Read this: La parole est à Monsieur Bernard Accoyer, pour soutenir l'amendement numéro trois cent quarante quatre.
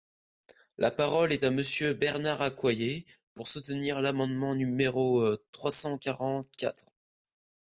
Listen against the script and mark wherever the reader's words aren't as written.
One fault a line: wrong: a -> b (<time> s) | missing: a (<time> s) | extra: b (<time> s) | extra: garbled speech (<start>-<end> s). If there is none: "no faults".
no faults